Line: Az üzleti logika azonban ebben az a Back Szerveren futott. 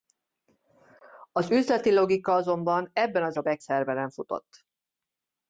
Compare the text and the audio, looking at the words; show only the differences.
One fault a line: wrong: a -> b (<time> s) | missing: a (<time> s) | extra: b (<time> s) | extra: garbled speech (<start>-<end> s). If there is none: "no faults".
no faults